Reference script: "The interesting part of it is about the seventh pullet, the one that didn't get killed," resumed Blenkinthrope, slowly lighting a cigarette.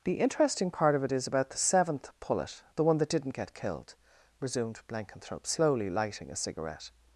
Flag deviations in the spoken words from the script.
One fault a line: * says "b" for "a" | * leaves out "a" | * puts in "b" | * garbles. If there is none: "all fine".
all fine